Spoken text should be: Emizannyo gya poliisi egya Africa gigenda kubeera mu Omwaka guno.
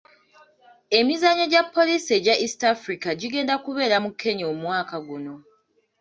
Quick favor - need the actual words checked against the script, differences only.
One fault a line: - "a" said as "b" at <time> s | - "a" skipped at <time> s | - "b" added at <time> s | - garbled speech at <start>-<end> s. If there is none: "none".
- "East" added at 2.4 s
- "Kenya" added at 4.2 s